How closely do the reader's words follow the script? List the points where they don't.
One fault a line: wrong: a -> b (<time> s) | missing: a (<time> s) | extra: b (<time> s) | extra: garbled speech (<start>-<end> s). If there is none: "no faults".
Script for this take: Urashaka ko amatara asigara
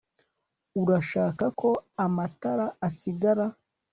no faults